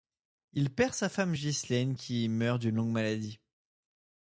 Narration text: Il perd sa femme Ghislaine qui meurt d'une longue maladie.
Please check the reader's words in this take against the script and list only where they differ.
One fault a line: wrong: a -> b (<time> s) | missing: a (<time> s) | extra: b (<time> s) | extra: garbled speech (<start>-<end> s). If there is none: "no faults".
no faults